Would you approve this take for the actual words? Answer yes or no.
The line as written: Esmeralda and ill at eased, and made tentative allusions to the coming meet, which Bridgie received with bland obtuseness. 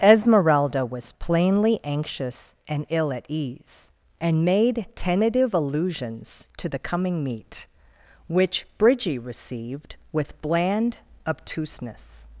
no